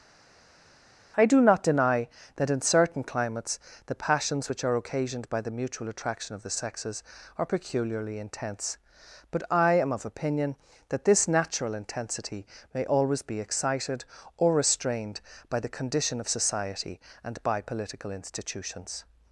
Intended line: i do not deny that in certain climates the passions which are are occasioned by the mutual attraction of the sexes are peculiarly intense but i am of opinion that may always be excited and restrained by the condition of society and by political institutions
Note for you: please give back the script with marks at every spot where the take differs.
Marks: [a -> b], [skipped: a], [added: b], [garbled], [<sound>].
i do not deny that in certain climates the passions which are [skipped: are] occasioned by the mutual attraction of the sexes are peculiarly intense but i am of opinion that [added: this natural intensity] may always be excited [and -> or] restrained by the condition of society and by political institutions